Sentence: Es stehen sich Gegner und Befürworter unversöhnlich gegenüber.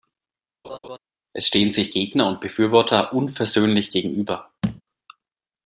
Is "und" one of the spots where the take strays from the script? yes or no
no